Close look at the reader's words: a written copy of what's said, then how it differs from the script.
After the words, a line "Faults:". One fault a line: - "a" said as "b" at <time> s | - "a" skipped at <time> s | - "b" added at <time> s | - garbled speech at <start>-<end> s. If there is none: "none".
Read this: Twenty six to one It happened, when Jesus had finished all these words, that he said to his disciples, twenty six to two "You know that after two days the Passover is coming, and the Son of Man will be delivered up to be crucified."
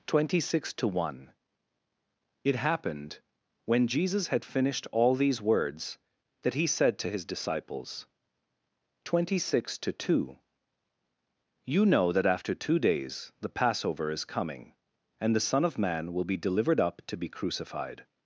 Twenty six to one It happened, when Jesus had finished all these words, that he said to his disciples, twenty six to two "You know that after two days the Passover is coming, and the Son of Man will be delivered up to be crucified."
Faults:
none